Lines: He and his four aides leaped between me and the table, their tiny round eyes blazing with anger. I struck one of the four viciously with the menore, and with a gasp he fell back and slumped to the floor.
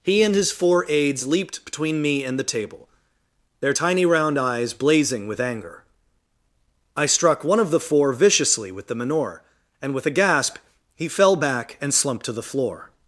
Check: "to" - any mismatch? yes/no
no